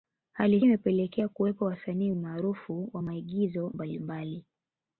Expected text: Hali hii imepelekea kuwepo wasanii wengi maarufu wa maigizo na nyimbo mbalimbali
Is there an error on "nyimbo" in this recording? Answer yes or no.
yes